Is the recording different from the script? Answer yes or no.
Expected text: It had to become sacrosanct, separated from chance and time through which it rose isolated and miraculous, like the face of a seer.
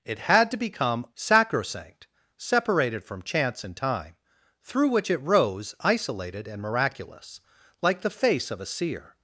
no